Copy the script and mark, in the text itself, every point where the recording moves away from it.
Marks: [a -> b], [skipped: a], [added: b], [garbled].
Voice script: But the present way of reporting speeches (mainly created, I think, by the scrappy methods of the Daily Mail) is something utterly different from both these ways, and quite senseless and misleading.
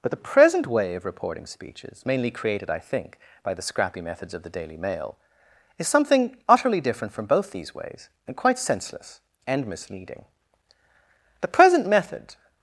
But the present way of reporting speeches (mainly created, I think, by the scrappy methods of the Daily Mail) is something utterly different from both these ways, and quite senseless and misleading. [added: The present method]